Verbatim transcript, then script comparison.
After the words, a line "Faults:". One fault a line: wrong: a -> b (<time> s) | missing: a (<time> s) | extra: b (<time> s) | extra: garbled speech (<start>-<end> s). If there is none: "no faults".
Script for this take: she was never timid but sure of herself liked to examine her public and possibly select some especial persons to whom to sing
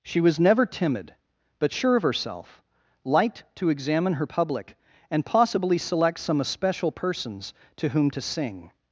she was never timid but sure of herself liked to examine her public and possibly select some especial persons to whom to sing
Faults:
no faults